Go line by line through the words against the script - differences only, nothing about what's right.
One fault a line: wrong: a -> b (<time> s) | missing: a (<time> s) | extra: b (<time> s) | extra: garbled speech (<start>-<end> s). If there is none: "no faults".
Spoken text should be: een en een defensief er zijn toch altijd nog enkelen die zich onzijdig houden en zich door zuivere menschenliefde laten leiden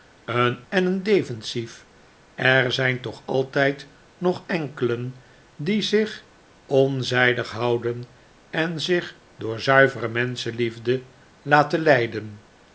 no faults